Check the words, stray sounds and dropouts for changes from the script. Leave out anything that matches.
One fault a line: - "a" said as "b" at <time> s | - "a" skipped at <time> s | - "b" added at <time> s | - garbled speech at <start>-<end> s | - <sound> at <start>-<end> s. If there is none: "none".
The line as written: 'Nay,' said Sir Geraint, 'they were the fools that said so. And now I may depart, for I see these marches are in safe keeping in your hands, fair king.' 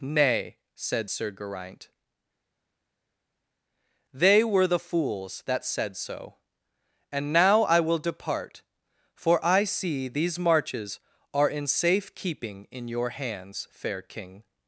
- "may" said as "will" at 7.8 s